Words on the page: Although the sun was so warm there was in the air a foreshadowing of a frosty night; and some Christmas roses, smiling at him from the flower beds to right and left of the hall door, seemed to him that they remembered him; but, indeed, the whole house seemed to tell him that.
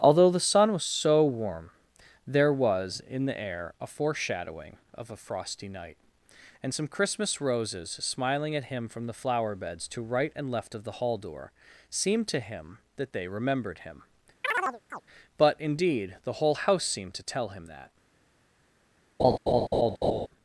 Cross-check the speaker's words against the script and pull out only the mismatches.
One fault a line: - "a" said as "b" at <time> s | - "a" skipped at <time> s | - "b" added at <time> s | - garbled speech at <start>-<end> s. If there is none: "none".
none